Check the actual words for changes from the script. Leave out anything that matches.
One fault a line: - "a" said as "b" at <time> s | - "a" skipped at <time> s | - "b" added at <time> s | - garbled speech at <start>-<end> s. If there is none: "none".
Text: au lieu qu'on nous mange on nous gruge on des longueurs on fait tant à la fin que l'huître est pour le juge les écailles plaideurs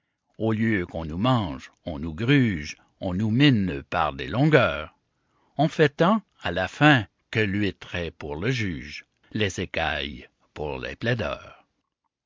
- "nous mine par" added at 3.1 s
- "pour les" added at 10.5 s